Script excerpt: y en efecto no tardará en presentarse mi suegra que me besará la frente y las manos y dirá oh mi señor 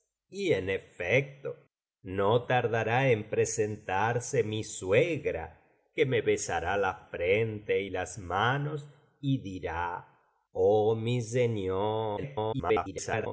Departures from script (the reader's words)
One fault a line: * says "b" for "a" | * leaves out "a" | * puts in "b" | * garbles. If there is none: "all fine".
* garbles